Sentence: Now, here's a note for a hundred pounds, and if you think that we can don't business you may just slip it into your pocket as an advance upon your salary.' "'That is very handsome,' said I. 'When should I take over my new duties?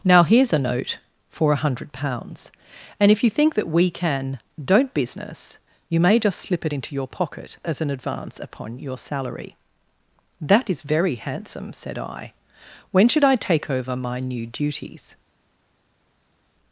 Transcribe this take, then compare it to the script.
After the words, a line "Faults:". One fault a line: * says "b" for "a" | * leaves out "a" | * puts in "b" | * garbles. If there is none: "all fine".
Now, here's a note for a hundred pounds, and if you think that we can don't business you may just slip it into your pocket as an advance upon your salary.' "'That is very handsome,' said I. 'When should I take over my new duties?
Faults:
all fine